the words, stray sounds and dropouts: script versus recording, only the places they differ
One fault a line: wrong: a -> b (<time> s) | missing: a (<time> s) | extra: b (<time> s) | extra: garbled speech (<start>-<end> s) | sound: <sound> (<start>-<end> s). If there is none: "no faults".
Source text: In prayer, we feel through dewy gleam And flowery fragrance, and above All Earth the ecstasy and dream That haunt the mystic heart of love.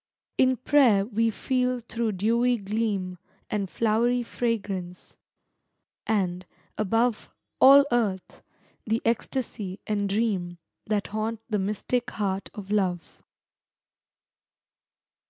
no faults